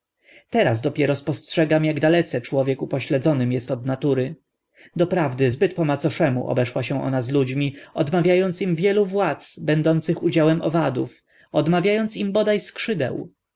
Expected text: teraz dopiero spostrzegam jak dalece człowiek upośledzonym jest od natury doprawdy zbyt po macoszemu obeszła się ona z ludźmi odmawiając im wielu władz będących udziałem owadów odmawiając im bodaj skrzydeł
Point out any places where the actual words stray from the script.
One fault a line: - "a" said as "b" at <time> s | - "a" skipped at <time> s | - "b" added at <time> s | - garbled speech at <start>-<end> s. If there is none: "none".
none